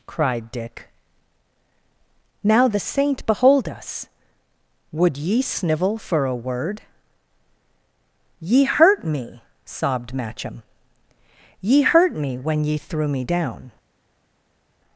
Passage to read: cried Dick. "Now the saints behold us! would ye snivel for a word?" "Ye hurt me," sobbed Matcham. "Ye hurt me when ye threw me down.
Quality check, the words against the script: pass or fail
fail